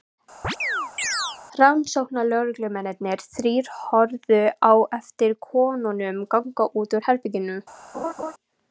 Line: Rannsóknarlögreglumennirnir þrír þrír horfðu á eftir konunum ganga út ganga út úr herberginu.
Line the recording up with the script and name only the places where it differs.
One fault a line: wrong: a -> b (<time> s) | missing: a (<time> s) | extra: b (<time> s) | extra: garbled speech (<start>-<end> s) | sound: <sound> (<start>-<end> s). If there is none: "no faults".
sound: chirp (0.4-1.4 s)
missing: þrír (3.7 s)
missing: ganga út (7.0 s)
sound: laugh (7.9-8.3 s)